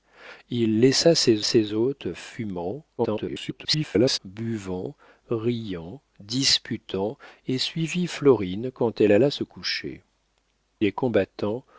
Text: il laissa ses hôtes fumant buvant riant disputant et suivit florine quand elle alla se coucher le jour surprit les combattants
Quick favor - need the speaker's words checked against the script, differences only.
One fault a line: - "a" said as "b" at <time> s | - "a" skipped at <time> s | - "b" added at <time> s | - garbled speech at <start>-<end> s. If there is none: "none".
- "ses" added at 1.4 s
- garbled speech at 3.0-4.2 s
- "le jour surprit" skipped at 10.0 s